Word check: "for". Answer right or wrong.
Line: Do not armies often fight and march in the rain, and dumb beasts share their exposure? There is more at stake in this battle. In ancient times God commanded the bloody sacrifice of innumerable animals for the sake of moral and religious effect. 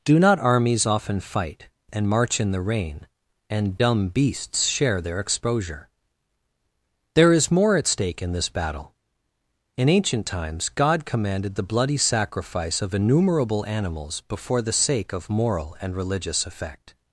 wrong